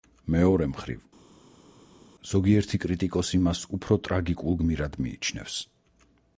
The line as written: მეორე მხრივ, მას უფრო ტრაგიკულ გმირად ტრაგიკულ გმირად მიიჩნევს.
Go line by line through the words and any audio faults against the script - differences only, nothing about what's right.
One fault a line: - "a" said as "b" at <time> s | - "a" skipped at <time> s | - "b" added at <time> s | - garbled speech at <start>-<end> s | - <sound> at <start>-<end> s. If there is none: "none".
- "ზოგიერთი კრიტიკოსი" added at 2.3 s
- "ტრაგიკულ გმირად" skipped at 5.0 s